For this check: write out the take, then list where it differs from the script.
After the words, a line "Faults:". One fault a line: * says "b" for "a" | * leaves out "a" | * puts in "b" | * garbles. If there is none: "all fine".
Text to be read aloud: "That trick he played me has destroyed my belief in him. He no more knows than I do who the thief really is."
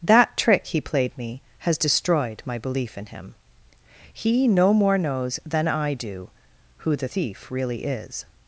"That trick he played me has destroyed my belief in him. He no more knows than I do who the thief really is."
Faults:
all fine